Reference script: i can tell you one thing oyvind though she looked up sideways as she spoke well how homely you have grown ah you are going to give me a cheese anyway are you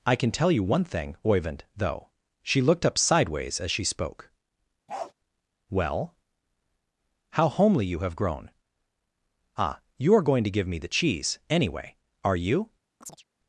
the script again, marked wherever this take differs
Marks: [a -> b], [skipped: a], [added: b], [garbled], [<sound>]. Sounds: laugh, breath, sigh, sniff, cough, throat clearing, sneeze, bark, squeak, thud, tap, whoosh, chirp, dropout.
i can tell you one thing oyvind though she looked up sideways as she spoke [bark] well how homely you have grown ah you are going to give me [a -> the] cheese anyway are you [chirp]